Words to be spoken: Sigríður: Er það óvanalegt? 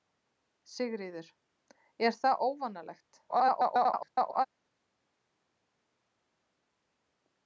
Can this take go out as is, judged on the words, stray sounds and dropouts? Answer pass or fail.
fail